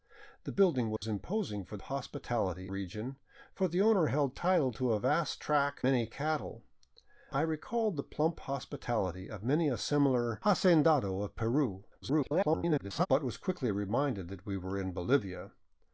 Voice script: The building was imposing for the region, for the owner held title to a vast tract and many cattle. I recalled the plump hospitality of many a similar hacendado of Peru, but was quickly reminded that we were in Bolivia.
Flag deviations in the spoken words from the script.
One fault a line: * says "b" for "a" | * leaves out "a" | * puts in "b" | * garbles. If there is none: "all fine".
* says "hospitality" for "the"
* leaves out "and"
* garbles